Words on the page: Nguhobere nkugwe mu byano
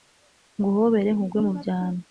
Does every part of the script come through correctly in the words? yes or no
yes